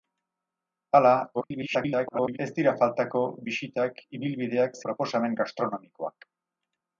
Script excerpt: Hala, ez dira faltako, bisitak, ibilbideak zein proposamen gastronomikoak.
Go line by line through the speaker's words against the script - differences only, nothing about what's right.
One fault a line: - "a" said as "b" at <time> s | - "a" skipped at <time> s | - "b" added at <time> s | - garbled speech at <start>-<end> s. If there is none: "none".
- garbled speech at 1.3-2.4 s
- "zein" skipped at 4.8 s